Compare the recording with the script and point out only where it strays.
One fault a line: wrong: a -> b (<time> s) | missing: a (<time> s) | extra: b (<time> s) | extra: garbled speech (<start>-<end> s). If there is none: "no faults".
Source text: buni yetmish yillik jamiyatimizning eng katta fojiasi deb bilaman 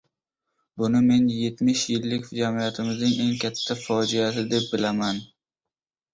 extra: men (1.1 s)